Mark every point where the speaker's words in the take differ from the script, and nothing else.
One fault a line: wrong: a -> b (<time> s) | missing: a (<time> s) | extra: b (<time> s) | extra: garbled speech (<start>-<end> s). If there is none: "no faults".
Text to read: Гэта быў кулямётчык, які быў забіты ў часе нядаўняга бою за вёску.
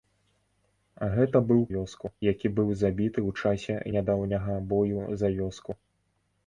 wrong: кулямётчык -> вёску (1.7 s)